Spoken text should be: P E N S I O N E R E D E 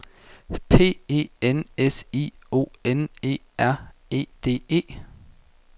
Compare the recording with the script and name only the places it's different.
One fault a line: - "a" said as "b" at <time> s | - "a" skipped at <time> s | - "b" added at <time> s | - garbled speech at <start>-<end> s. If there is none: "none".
none